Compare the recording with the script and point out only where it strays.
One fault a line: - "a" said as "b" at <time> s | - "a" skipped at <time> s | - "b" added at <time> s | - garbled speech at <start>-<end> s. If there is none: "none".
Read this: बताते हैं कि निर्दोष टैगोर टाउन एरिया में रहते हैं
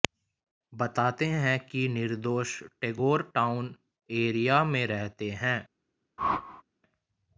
none